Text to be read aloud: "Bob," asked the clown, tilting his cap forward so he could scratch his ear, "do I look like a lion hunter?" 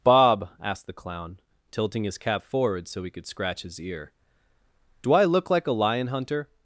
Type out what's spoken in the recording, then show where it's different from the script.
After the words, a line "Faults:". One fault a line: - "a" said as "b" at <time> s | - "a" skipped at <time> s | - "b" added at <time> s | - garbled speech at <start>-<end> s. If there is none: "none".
"Bob," asked the clown, tilting his cap forward so he could scratch his ear, "do I look like a lion hunter?"
Faults:
none